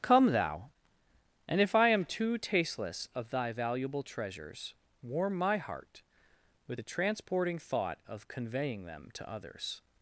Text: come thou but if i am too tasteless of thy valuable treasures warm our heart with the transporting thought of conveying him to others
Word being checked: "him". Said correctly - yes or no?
no